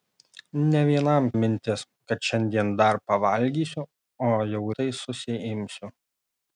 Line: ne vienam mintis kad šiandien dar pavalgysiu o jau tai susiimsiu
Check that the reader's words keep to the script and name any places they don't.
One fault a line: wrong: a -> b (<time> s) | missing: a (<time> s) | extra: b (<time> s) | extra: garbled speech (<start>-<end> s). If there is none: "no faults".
no faults